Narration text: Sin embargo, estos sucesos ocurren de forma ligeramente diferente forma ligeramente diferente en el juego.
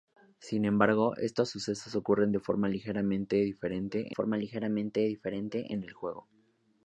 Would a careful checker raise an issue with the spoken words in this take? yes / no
no